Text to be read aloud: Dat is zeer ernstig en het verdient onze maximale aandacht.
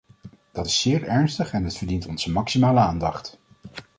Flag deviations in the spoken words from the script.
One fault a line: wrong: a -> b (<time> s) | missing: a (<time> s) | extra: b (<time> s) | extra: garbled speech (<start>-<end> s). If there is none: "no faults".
no faults